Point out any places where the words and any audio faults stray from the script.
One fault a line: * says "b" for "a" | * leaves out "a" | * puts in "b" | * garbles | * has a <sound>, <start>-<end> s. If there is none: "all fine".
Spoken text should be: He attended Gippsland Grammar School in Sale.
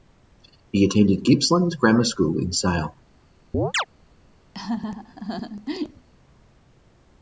* has a chirp, 3.5-3.8 s
* has a laugh, 4.5-6.1 s